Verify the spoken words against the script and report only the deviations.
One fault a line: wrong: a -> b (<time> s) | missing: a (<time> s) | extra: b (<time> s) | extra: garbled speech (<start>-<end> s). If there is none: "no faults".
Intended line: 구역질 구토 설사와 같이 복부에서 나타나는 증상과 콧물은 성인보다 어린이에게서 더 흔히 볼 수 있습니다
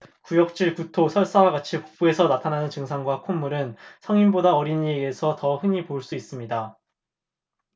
no faults